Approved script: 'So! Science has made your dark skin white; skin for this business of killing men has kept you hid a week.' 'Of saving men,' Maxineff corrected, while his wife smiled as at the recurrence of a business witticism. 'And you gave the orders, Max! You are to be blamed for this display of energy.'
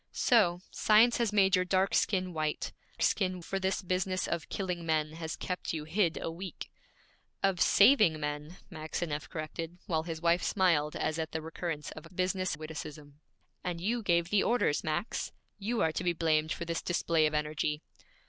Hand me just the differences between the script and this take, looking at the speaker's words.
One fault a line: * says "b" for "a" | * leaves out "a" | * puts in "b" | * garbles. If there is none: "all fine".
all fine